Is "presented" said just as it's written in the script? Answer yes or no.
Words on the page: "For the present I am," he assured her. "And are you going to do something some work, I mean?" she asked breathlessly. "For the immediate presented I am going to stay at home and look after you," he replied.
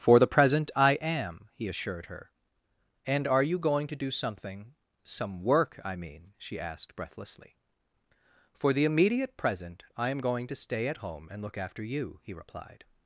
no